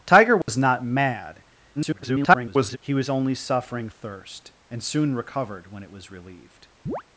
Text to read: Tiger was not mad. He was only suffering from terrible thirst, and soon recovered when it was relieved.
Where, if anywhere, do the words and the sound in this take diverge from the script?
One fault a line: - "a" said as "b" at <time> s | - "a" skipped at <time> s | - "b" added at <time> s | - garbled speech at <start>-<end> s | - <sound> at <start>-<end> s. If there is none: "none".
- dropout at 0.4-0.5 s
- garbled speech at 1.8-2.8 s
- "from terrible" skipped at 3.9 s
- chirp at 6.9-7.0 s